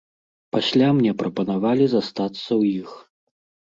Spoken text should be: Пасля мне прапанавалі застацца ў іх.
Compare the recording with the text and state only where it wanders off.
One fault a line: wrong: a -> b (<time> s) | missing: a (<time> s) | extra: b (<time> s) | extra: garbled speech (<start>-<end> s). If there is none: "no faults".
no faults